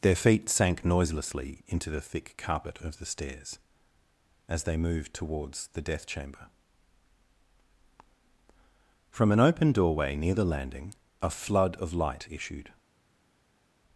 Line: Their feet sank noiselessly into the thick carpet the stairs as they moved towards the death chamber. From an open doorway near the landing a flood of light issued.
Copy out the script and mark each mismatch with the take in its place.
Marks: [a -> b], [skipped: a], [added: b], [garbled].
Their feet sank noiselessly into the thick carpet [added: of] the stairs as they moved towards the death chamber. From an open doorway near the landing a flood of light issued.